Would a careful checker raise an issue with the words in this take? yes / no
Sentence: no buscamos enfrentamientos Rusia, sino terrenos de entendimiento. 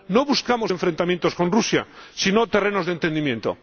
yes